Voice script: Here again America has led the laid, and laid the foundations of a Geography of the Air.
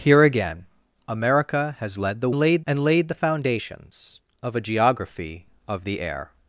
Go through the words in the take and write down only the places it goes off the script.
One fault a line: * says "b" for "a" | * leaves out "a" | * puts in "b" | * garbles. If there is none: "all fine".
all fine